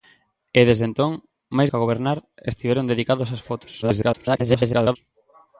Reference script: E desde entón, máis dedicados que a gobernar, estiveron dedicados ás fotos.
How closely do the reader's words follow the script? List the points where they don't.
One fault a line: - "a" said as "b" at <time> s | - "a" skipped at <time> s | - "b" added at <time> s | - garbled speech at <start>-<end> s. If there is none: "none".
- "dedicados" skipped at 1.7 s
- garbled speech at 3.8-5.0 s